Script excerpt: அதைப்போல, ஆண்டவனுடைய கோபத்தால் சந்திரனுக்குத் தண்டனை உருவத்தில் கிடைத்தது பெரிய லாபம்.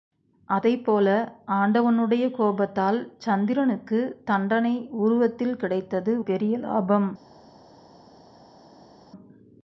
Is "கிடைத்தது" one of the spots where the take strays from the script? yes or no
no